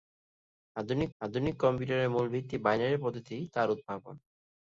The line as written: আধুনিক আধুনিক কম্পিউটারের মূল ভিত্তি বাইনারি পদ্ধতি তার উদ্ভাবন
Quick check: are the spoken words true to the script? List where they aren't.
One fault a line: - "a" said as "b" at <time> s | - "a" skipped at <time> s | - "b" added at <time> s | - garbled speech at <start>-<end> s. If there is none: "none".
none